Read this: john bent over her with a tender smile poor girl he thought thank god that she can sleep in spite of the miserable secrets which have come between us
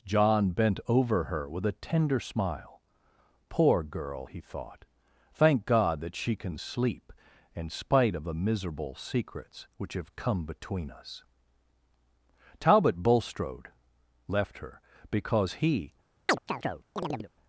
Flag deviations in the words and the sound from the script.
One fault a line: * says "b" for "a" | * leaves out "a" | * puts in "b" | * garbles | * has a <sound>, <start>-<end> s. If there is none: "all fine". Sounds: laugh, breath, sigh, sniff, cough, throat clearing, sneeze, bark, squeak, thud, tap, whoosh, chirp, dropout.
* puts in "talbot bulstrode left her because he"
* has a chirp, 16.3-17.3 s